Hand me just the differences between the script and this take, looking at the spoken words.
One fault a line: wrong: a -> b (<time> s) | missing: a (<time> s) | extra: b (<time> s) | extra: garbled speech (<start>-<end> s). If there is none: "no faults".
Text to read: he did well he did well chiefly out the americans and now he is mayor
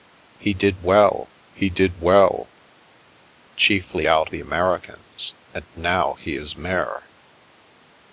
no faults